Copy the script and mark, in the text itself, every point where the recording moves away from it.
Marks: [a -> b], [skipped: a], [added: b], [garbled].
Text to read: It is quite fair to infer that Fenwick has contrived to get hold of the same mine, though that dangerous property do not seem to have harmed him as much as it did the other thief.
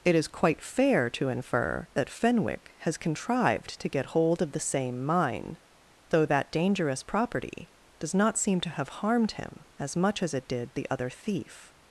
It is quite fair to infer that Fenwick has contrived to get hold of the same mine, though that dangerous property [do -> does] not seem to have harmed him as much as it did the other thief.